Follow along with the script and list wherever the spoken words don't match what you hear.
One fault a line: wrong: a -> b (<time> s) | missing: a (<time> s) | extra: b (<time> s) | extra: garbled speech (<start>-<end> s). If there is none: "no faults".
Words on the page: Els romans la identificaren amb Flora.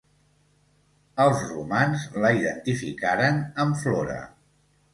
no faults